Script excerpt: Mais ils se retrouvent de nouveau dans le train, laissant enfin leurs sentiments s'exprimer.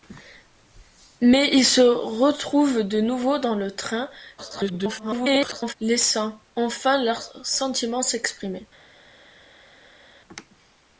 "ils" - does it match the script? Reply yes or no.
yes